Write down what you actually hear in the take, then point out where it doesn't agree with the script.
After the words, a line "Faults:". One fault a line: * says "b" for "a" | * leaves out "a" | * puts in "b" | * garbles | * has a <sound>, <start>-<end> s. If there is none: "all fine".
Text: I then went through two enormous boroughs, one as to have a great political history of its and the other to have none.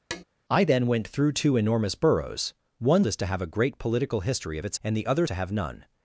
I then went through two enormous boroughs, one as to have a great political history of its and the other to have none.
Faults:
* has a tap, 0.1-0.2 s